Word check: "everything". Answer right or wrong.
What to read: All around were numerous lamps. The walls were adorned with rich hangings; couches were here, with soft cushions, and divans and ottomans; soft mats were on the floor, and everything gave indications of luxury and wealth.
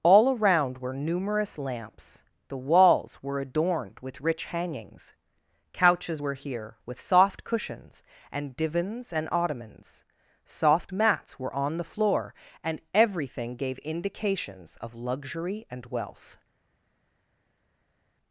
right